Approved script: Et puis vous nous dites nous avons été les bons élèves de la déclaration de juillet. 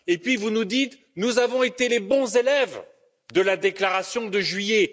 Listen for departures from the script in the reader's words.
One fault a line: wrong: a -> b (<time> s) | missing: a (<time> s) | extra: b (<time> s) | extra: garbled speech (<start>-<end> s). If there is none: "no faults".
no faults